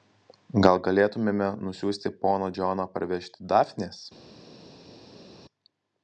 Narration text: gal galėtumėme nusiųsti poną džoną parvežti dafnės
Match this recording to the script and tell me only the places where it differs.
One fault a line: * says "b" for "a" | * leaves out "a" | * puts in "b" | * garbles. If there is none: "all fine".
all fine